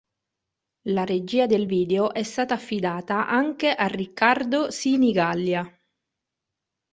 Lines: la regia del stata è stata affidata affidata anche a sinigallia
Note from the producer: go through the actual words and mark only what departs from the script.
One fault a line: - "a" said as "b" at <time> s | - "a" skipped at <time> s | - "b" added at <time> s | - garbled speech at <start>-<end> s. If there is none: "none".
- "stata" said as "video" at 1.6 s
- "affidata" skipped at 3.3 s
- "riccardo" added at 3.9 s